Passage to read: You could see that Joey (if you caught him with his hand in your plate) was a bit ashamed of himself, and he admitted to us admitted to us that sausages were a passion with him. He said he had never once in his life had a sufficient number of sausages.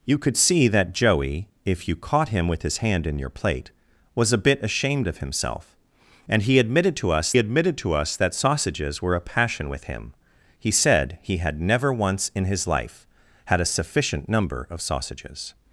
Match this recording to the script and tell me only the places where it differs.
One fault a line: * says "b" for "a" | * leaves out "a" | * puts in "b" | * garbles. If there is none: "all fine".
all fine